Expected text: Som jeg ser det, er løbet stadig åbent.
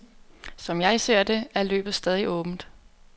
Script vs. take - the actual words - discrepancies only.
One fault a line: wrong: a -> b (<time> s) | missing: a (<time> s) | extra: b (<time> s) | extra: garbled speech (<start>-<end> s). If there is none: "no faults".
no faults